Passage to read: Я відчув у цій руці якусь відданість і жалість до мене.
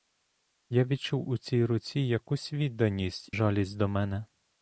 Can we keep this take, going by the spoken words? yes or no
no